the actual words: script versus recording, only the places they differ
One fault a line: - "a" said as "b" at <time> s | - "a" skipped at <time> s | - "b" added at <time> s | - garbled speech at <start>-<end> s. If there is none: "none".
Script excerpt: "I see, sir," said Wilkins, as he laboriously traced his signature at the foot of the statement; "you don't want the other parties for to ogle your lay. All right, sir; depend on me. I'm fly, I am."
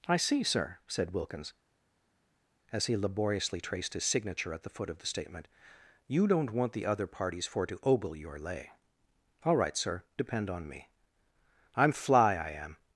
none